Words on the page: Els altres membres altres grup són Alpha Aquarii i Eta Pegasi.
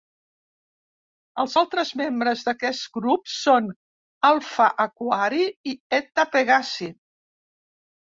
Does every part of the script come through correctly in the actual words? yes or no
no